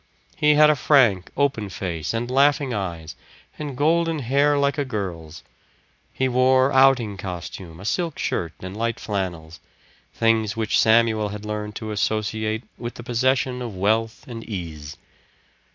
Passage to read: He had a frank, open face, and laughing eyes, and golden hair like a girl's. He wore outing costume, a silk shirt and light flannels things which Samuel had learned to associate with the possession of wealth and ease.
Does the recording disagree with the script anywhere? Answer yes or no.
no